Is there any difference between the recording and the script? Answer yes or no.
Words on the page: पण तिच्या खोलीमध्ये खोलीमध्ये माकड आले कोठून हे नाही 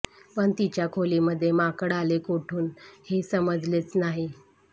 yes